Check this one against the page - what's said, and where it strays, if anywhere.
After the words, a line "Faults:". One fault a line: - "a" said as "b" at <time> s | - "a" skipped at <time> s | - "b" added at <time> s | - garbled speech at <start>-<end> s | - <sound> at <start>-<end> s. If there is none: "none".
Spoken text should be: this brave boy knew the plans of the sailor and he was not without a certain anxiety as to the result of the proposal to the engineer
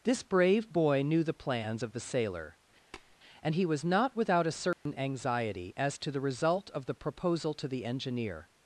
this brave boy knew the plans of the sailor and he was not without a certain anxiety as to the result of the proposal to the engineer
Faults:
- tap at 2.9-3.2 s
- dropout at 4.7-4.9 s